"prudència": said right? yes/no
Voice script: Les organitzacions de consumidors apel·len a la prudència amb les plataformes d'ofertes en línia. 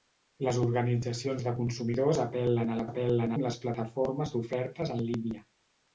no